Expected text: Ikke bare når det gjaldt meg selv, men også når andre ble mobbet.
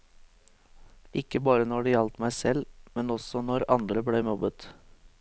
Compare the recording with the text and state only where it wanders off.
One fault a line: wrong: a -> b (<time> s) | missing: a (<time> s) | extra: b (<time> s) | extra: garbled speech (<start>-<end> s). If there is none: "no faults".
no faults